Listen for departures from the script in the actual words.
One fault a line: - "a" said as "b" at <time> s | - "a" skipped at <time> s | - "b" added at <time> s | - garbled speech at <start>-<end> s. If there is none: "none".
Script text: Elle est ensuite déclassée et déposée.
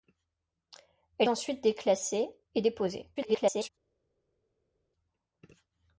- "est" skipped at 1.3 s
- garbled speech at 3.2-3.7 s